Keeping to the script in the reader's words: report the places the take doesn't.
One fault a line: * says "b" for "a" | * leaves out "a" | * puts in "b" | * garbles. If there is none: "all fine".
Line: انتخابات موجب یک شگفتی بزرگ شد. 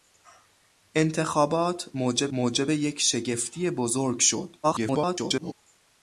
* puts in "موجب"
* garbles